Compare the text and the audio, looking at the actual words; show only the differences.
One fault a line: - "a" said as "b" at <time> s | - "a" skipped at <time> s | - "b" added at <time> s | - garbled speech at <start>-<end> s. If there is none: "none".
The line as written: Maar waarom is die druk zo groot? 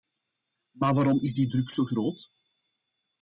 none